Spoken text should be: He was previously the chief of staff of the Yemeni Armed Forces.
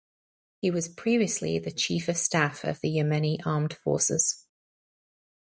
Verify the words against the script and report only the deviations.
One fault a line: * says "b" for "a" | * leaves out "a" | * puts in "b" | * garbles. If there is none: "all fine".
all fine